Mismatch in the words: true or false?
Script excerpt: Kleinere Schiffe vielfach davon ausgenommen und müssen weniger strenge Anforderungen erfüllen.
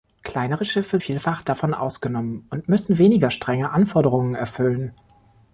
false